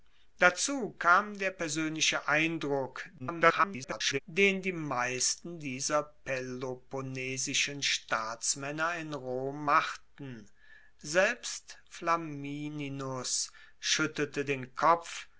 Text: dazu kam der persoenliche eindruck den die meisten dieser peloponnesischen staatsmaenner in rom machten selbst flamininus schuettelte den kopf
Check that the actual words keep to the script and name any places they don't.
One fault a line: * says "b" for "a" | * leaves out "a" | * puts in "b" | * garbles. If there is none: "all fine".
* garbles